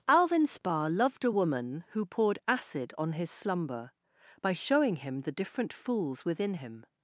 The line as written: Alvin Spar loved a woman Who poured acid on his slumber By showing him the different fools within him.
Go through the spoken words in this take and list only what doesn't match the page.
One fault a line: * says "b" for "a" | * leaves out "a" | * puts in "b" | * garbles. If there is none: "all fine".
all fine